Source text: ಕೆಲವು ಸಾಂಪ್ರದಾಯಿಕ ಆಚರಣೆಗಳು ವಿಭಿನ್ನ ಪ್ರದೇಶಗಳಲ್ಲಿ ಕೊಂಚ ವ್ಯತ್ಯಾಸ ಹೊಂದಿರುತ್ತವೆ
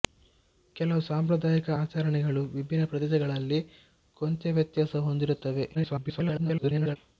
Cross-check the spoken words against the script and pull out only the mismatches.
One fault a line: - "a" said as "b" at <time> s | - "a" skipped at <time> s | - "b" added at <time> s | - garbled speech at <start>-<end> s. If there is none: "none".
- garbled speech at 5.7-7.0 s